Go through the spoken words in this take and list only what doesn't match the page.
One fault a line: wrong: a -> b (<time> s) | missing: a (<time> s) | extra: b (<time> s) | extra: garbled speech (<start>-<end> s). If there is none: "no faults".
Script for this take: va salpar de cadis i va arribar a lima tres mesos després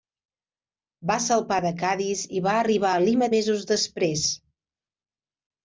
missing: tres (3.3 s)